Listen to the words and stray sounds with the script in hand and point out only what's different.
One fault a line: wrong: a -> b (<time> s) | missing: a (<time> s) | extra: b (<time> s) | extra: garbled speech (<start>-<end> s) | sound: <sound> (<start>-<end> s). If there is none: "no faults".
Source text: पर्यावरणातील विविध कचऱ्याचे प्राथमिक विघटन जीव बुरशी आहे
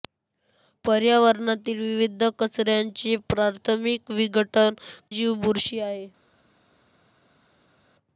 no faults